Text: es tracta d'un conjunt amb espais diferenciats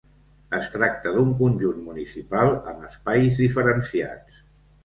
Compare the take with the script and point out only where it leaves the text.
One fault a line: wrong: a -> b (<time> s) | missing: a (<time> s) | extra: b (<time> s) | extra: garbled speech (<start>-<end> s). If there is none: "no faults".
extra: municipal (1.9 s)